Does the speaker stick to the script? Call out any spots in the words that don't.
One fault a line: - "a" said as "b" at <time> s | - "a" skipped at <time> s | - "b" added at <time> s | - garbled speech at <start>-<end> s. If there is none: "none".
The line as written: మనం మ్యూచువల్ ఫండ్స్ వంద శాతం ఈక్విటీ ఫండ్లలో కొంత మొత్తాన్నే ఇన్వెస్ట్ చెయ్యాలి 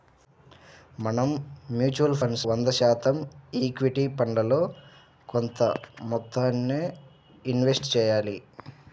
none